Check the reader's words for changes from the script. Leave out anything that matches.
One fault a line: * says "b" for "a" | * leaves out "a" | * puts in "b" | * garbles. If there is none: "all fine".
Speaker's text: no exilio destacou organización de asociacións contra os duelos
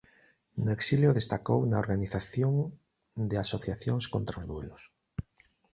* puts in "na"